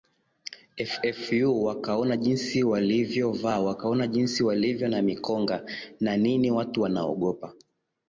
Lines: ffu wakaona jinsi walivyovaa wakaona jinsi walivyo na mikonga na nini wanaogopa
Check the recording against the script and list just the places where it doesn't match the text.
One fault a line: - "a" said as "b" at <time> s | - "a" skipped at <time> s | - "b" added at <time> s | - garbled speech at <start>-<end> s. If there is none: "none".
- "watu" added at 6.5 s